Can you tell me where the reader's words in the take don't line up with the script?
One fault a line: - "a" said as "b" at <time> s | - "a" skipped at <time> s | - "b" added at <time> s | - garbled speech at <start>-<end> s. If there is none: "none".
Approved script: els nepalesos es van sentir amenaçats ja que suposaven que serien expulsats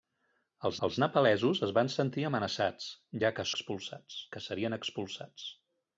- "els" added at 0.9 s
- "suposaven" said as "expulsats" at 3.5 s